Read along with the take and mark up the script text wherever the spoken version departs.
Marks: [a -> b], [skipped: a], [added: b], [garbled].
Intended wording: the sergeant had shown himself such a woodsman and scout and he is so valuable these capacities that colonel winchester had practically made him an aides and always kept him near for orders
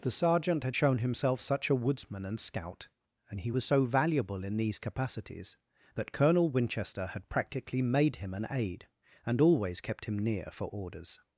the sergeant had shown himself such a woodsman and scout and he [is -> was] so valuable [added: in] these capacities that colonel winchester had practically made him an [aides -> aide] and always kept him near for orders